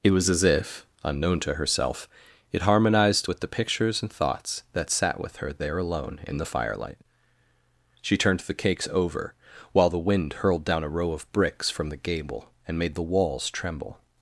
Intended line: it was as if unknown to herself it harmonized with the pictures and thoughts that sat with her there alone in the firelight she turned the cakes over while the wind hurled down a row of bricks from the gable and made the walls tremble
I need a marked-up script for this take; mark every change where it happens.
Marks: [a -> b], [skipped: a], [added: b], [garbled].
it was as if unknown to herself it harmonized with the pictures and thoughts that sat with her there alone in the firelight she turned the cakes over while the wind hurled down a row of bricks from the gable and made the walls tremble